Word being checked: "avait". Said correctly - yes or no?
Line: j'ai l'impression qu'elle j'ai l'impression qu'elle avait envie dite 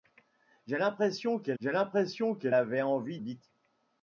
yes